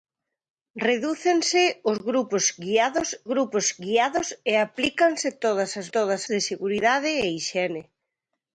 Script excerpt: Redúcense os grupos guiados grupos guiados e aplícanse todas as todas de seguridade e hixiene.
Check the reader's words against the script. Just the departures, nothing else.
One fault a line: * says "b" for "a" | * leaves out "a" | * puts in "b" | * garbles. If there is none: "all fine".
all fine